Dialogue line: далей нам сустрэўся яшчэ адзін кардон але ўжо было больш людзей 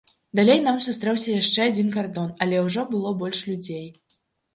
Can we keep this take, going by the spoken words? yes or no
yes